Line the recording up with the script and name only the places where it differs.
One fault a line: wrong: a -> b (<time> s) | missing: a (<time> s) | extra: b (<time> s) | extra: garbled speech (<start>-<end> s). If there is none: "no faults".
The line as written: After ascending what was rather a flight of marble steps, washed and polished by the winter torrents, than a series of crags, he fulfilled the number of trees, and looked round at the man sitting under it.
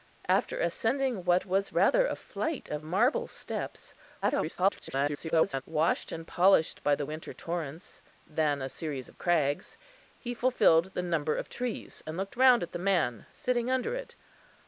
extra: garbled speech (4.2-5.6 s)